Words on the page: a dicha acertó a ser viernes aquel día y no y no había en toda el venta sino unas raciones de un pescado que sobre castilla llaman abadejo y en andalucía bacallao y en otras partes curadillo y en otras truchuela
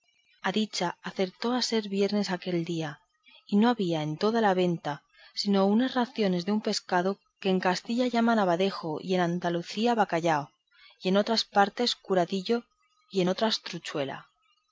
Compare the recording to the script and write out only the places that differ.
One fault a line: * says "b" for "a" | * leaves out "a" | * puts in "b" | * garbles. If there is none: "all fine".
* leaves out "y no"
* says "la" for "el"
* says "en" for "sobre"